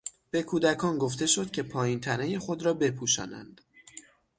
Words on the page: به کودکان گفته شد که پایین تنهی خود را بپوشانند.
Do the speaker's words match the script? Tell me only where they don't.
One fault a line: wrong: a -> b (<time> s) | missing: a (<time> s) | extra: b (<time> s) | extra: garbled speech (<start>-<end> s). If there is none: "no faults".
no faults